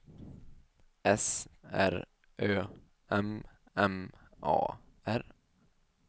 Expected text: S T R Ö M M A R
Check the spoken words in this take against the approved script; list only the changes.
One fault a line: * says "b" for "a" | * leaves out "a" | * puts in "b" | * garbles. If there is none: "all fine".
* leaves out "T"